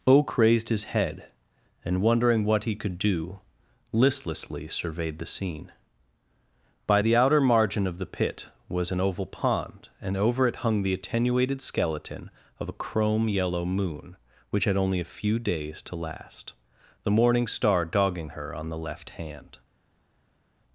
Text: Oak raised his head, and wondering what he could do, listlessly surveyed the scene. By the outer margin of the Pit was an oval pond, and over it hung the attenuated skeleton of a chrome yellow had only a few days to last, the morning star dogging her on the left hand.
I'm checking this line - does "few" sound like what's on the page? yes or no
yes